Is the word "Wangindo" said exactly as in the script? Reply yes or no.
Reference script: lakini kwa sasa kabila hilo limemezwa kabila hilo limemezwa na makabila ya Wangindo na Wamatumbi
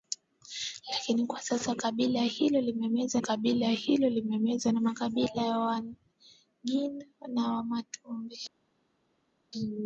yes